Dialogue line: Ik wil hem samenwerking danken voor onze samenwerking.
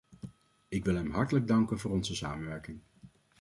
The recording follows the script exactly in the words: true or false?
false